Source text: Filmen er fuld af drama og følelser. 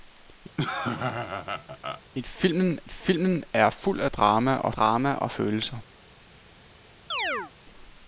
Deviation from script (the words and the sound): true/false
true